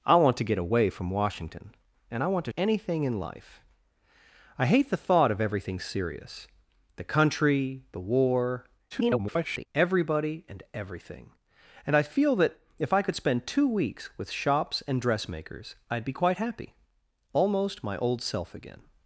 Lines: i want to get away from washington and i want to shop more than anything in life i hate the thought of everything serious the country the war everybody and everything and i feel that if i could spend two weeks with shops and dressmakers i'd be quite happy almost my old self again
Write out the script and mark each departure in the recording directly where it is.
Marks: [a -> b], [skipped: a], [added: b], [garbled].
i want to get away from washington and i want to [skipped: shop more than] anything in life i hate the thought of everything serious the country the war [garbled] everybody and everything and i feel that if i could spend two weeks with shops and dressmakers i'd be quite happy almost my old self again